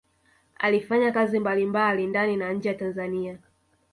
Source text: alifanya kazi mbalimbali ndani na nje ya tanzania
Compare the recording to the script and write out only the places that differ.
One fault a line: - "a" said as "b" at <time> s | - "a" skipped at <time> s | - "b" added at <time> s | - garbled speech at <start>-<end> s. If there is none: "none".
none